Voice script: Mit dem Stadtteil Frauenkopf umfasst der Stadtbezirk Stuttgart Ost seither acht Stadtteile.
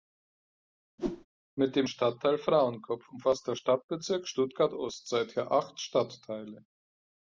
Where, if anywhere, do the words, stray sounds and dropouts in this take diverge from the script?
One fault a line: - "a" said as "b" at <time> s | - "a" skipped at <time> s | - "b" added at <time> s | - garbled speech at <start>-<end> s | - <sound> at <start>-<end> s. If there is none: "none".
- whoosh at 1.0-1.3 s